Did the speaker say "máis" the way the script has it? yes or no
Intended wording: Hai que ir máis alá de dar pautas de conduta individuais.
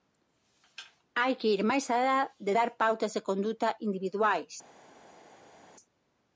yes